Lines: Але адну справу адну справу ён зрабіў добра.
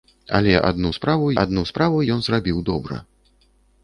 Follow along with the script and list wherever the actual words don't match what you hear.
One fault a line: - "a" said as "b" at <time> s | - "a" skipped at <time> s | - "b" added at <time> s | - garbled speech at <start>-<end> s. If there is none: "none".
none